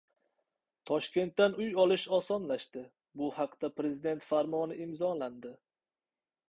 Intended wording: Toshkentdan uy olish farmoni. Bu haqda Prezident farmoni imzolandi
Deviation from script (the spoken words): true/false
true